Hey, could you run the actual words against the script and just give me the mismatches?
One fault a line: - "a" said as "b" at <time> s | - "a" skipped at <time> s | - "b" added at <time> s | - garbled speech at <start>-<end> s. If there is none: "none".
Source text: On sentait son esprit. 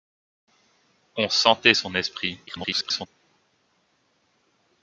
- garbled speech at 2.5-3.1 s